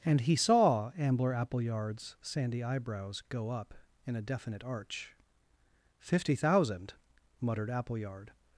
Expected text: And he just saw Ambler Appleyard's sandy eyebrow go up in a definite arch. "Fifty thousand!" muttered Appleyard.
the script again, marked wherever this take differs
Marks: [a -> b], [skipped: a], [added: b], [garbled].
And he [skipped: just] saw Ambler Appleyard's sandy [eyebrow -> eyebrows] go up in a definite arch. "Fifty thousand!" muttered Appleyard.